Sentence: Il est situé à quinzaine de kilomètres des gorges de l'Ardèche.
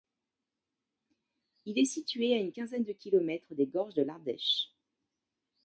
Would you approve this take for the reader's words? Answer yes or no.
no